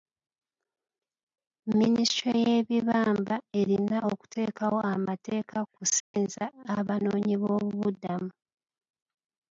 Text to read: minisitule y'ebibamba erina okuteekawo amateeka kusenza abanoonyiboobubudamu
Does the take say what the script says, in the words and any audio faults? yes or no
no